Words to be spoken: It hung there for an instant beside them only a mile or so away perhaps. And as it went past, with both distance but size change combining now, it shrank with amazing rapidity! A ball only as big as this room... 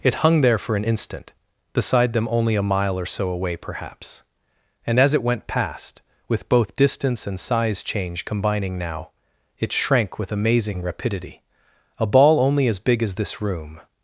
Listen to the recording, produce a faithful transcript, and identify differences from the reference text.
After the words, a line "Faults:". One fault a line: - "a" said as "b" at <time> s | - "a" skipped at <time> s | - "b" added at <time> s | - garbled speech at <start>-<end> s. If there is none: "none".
It hung there for an instant beside them only a mile or so away perhaps. And as it went past, with both distance and size change combining now, it shrank with amazing rapidity! A ball only as big as this room...
Faults:
- "but" said as "and" at 7.3 s